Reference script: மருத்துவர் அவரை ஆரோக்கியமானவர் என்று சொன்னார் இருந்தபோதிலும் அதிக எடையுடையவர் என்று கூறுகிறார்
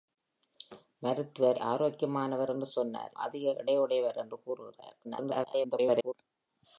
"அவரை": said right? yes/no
no